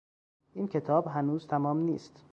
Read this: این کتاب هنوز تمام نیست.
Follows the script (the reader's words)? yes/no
yes